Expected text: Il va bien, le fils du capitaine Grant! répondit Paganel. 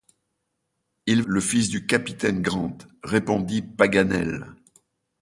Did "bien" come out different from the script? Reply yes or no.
yes